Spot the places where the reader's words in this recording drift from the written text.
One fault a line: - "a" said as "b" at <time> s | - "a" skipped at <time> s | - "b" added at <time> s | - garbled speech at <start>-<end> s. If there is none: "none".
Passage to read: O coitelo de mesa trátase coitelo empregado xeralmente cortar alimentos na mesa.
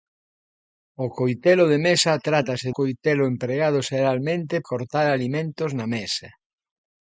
none